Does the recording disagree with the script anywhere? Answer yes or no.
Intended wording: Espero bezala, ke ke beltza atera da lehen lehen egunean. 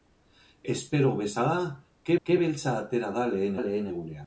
no